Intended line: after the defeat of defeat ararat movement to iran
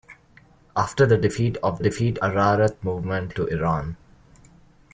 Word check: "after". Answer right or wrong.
right